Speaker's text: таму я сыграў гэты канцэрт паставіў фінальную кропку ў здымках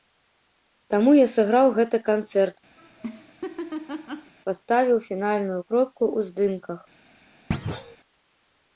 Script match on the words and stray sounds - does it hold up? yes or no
no